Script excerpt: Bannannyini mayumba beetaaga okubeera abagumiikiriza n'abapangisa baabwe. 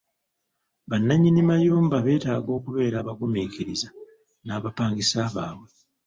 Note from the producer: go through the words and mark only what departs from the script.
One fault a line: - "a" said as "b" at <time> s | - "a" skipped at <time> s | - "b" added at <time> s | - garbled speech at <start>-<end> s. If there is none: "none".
none